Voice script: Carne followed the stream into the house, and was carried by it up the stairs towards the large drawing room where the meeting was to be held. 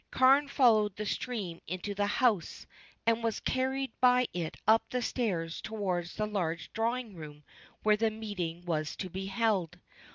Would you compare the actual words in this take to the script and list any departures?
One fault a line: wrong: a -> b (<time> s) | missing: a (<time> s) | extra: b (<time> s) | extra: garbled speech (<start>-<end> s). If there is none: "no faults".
no faults